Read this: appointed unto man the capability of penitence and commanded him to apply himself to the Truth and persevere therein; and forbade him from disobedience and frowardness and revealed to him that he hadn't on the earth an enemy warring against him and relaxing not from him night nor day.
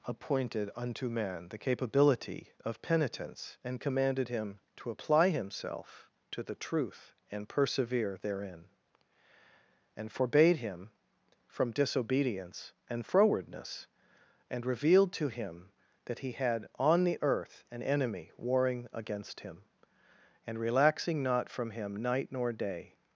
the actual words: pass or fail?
fail